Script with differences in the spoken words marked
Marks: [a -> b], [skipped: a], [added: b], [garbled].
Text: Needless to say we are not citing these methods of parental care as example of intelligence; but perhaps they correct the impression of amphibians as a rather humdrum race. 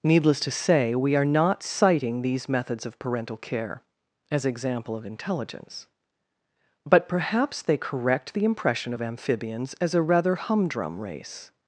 Needless to say we are not citing these methods of parental care as example of intelligence; but perhaps they correct the impression of amphibians as a rather humdrum race.